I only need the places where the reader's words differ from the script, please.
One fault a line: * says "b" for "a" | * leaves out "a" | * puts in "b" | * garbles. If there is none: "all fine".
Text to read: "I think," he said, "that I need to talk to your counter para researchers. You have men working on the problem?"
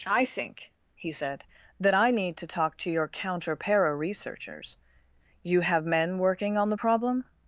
all fine